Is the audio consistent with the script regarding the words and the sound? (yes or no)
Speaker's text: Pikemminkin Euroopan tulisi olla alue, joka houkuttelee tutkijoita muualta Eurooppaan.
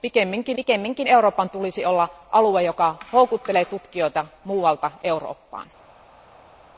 no